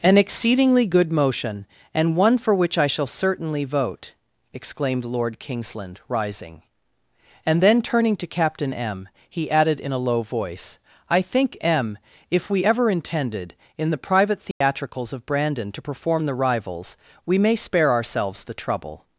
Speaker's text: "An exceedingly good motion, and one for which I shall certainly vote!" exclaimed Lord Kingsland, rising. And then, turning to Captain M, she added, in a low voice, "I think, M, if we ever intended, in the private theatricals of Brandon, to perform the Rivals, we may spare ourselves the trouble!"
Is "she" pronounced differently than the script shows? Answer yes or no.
yes